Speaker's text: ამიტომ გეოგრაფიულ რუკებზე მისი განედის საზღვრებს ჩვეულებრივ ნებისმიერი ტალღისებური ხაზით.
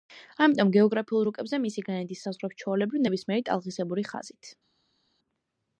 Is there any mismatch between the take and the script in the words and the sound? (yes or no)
no